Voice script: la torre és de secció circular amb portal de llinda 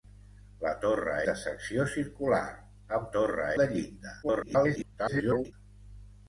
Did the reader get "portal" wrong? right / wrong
wrong